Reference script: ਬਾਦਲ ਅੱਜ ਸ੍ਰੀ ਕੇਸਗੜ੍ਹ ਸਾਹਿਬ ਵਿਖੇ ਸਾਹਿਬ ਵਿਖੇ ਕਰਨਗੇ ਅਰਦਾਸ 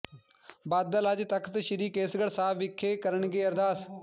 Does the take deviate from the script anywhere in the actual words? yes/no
yes